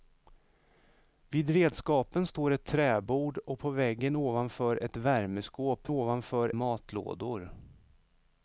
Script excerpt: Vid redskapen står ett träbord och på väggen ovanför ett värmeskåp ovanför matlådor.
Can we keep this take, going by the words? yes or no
yes